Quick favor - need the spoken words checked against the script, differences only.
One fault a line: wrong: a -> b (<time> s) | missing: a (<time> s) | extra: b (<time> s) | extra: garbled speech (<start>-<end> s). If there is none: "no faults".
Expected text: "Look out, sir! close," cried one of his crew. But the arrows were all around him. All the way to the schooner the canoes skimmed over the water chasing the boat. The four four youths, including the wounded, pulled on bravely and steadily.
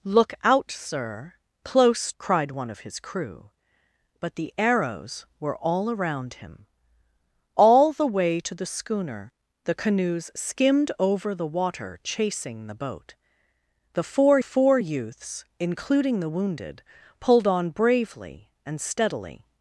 no faults